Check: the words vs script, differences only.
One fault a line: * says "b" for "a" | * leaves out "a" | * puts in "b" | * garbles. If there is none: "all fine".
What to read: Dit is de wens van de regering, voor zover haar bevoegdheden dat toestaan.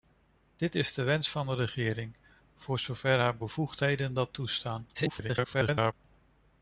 * garbles